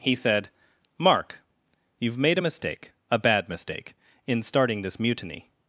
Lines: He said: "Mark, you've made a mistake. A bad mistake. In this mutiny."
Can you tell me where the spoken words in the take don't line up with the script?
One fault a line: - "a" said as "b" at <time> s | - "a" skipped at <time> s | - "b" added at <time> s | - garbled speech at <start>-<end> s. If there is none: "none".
- "starting" added at 4.4 s